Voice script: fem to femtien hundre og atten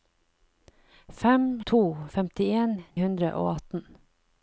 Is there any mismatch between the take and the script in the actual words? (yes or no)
no